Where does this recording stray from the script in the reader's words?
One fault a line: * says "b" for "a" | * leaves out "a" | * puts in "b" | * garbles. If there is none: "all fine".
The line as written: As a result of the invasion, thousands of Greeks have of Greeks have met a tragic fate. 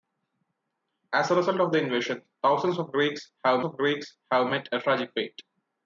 all fine